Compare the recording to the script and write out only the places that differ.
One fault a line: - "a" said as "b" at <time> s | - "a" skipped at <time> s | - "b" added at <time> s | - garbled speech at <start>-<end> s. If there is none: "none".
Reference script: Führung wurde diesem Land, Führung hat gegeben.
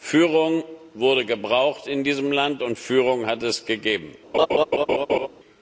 - "gebraucht in" added at 1.2 s
- "und" added at 2.6 s
- "es" added at 3.4 s